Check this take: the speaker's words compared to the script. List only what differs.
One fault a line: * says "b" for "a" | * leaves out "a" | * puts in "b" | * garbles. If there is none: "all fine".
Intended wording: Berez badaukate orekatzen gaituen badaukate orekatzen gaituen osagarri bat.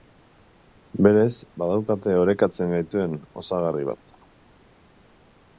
* leaves out "badaukate orekatzen gaituen"